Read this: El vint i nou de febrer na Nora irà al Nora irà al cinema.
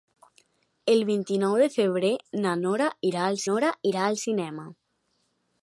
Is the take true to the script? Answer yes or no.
yes